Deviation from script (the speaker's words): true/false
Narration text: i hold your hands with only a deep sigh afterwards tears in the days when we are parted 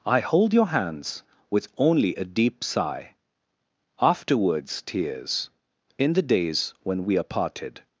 false